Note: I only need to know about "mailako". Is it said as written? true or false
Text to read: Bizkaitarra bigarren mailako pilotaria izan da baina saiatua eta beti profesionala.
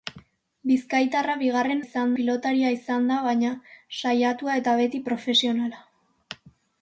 false